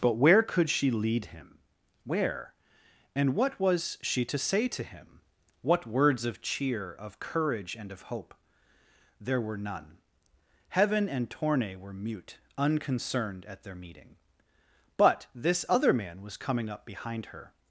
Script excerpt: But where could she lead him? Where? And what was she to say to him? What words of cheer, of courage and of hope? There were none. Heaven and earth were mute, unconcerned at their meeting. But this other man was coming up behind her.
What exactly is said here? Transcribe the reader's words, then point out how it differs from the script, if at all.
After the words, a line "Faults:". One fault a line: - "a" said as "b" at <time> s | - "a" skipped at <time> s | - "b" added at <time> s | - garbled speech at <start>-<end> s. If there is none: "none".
But where could she lead him? Where? And what was she to say to him? What words of cheer, of courage and of hope? There were none. Heaven and torne were mute, unconcerned at their meeting. But this other man was coming up behind her.
Faults:
- "earth" said as "torne" at 11.3 s